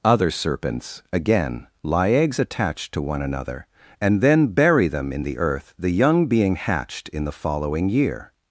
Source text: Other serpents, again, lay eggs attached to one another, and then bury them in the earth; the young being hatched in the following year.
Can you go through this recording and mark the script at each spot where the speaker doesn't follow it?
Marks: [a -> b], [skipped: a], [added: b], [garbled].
Other serpents, again, [lay -> lie] eggs attached to one another, and then bury them in the earth; the young being hatched in the following year.